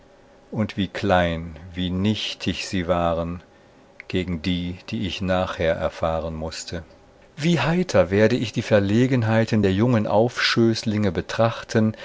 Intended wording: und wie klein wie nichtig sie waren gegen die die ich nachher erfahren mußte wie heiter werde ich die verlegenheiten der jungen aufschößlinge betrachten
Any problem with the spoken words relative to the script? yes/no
no